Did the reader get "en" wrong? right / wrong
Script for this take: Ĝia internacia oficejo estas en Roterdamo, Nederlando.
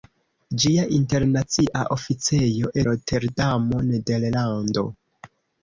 wrong